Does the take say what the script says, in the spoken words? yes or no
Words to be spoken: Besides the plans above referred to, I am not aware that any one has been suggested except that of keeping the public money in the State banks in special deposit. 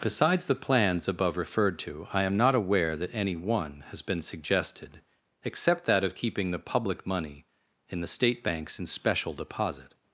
yes